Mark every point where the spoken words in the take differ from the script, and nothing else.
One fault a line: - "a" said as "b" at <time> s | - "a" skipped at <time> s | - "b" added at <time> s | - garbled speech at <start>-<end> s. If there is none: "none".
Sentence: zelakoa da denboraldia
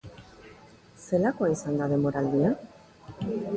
- "izan" added at 1.5 s